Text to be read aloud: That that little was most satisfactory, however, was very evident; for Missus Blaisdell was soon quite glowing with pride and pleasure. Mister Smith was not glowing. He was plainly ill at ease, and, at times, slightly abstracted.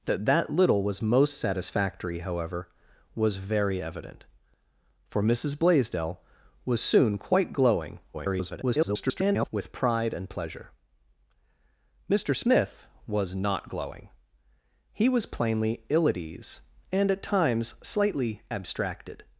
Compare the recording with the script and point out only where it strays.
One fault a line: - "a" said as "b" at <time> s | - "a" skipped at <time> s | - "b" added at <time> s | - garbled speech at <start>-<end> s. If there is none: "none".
- garbled speech at 8.1-9.5 s